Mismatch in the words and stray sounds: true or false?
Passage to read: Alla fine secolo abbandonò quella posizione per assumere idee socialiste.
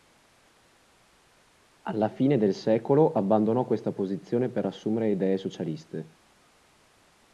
true